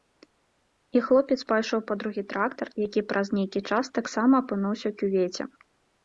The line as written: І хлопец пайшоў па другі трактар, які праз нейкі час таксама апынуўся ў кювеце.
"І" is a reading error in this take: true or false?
false